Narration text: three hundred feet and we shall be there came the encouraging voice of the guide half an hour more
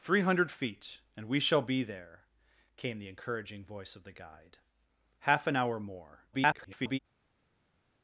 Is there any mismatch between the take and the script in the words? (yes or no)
yes